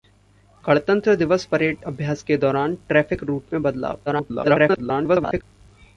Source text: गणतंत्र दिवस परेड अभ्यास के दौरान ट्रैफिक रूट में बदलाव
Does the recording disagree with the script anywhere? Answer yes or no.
yes